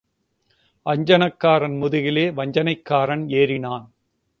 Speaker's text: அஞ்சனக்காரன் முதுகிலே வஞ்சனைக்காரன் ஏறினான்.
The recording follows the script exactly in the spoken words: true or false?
true